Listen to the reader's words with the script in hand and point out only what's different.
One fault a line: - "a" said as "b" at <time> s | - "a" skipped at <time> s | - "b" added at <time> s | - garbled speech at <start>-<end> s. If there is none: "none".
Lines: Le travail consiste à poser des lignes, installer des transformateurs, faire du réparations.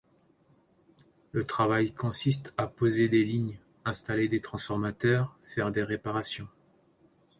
- "du" said as "des" at 5.7 s